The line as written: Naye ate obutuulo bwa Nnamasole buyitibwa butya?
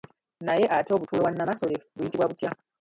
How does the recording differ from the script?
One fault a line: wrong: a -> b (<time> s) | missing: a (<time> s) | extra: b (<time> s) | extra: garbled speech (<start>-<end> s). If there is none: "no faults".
no faults